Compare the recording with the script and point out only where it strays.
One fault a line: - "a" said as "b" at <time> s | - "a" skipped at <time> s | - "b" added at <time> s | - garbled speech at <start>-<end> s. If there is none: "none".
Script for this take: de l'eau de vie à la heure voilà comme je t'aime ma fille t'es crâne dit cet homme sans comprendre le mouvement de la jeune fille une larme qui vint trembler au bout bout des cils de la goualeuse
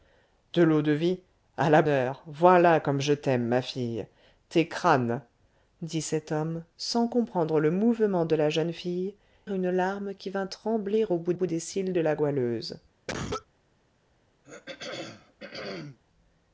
none